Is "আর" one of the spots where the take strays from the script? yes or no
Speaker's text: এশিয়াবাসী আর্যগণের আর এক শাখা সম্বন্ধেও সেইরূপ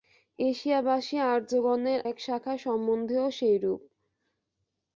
yes